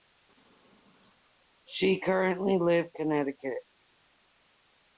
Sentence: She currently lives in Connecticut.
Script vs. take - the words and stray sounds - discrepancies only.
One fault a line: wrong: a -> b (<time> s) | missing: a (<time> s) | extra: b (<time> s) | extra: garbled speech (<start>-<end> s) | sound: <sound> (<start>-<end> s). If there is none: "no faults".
missing: in (3.0 s)